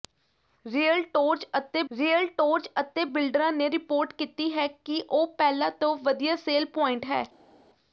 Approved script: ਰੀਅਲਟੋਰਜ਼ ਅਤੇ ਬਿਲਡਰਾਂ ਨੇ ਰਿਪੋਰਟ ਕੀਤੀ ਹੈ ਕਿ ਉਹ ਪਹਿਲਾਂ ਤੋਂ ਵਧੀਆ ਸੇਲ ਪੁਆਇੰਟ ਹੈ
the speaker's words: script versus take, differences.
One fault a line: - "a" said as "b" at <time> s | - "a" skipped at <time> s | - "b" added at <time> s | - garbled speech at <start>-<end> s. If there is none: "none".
- "ਰੀਅਲਟੋਰਜ਼ ਅਤੇ" added at 1.9 s